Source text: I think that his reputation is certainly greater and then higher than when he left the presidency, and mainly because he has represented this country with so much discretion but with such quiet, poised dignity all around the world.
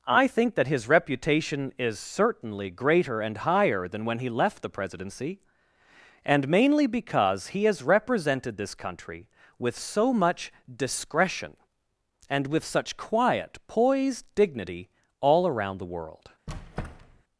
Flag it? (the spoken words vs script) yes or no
yes